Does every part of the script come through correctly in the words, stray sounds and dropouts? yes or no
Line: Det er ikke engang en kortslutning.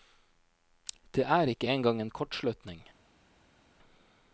yes